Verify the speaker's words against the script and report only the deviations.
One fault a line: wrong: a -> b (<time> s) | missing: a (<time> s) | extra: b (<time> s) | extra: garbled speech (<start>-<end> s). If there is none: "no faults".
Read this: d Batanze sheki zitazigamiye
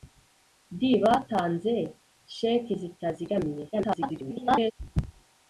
extra: garbled speech (3.7-4.7 s)